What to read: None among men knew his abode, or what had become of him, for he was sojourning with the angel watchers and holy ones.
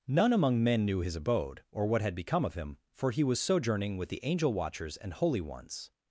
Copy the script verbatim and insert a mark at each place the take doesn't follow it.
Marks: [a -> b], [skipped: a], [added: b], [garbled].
None among men knew his abode, or what had become of him, for he was sojourning with the angel watchers and holy ones.